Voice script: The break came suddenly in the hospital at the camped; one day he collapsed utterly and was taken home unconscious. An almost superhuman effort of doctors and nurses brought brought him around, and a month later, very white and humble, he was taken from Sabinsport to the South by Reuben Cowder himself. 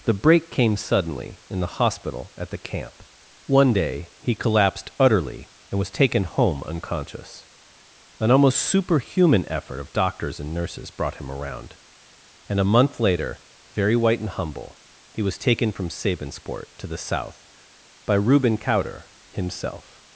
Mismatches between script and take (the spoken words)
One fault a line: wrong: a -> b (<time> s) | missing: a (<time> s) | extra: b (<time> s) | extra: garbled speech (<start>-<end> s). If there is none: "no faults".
wrong: camped -> camp (2.6 s)
missing: brought (11.2 s)